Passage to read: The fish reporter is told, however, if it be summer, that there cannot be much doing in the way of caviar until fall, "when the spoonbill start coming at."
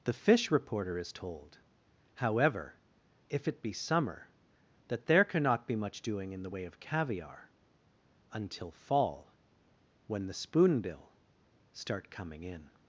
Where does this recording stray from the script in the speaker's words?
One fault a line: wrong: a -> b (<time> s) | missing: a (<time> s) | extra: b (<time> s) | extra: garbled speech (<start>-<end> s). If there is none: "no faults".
wrong: at -> in (12.4 s)